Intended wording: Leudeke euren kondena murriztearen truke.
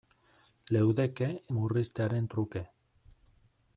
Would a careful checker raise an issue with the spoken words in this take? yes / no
yes